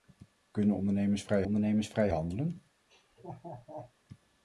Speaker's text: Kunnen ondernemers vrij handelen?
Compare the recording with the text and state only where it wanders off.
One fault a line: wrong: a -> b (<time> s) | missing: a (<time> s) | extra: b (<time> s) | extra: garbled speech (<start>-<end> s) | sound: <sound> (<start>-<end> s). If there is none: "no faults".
extra: ondernemers vrij (1.4 s)
sound: laugh (2.9-3.9 s)